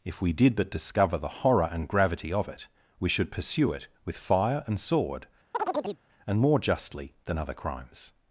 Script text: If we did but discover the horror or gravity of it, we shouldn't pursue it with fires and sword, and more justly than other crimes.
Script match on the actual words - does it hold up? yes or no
no